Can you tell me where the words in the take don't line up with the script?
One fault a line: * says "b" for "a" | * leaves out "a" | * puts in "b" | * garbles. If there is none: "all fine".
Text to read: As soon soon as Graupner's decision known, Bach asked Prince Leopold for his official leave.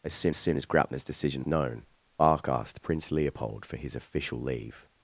all fine